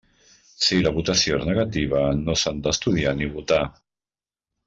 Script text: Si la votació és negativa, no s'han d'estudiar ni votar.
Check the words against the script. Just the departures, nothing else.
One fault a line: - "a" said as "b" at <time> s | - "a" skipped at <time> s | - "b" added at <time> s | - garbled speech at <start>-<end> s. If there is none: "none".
none